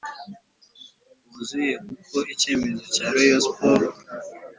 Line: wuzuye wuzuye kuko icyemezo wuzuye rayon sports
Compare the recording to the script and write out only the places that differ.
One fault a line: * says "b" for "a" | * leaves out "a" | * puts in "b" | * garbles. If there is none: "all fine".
* leaves out "wuzuye"
* says "cya" for "wuzuye"